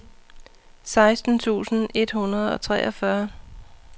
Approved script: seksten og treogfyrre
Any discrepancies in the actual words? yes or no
yes